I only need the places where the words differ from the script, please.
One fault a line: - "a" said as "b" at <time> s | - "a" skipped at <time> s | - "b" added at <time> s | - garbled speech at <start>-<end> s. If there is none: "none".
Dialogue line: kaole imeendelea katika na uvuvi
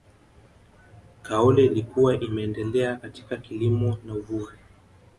- "ilikuwa" added at 1.6 s
- "kilimo" added at 3.4 s